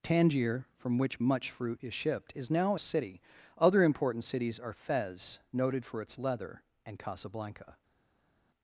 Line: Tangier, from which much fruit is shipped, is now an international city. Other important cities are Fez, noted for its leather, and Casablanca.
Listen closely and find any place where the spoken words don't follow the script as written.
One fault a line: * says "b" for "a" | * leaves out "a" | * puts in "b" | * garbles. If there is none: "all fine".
* leaves out "an international"